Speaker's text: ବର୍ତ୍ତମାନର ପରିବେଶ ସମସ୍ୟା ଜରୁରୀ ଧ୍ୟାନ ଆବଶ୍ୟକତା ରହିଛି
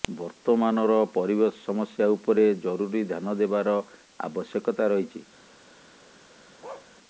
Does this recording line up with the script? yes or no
no